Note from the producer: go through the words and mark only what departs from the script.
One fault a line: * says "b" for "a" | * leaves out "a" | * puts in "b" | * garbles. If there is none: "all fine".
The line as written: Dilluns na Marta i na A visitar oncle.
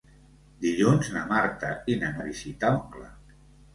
all fine